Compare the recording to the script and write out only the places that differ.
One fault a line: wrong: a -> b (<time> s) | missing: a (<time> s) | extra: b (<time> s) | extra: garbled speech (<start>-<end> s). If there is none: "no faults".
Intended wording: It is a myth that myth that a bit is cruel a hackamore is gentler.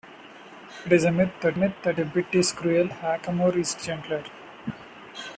no faults